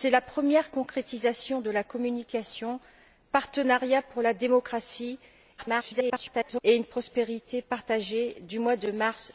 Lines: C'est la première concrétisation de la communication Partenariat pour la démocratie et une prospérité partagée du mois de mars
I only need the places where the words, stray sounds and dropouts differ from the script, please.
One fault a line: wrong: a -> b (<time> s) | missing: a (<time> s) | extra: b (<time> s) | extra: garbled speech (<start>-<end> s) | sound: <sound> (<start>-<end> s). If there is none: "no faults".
extra: garbled speech (5.6-6.6 s)